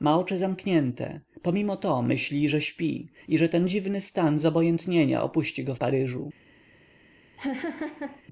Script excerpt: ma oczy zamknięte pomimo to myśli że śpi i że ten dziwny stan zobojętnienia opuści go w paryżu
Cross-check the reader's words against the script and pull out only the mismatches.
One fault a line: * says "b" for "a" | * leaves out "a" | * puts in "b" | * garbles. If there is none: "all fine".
all fine